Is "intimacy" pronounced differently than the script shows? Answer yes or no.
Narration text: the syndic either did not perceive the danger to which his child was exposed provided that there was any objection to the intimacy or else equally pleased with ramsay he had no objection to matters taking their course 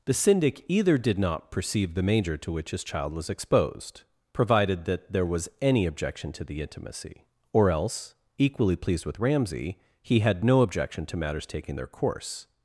no